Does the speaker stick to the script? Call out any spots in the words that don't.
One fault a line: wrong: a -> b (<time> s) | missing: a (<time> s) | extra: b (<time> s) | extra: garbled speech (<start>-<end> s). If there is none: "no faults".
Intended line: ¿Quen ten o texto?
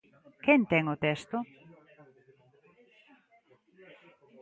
no faults